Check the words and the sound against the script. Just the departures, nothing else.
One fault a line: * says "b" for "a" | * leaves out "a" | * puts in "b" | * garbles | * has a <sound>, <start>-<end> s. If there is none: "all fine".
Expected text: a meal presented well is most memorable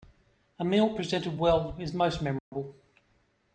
* has a dropout, 2.4-2.5 s